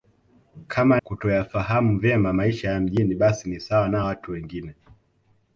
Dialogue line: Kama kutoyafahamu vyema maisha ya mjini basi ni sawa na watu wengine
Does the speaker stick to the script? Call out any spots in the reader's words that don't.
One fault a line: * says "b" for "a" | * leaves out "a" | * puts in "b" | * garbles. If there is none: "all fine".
all fine